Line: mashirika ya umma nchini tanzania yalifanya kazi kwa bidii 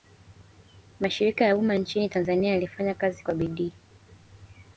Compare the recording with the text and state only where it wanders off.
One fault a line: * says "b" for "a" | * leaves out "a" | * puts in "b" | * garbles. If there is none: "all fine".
all fine